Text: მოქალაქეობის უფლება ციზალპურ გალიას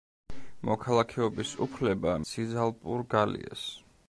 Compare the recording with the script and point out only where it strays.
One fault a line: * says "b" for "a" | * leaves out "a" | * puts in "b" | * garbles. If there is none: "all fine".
all fine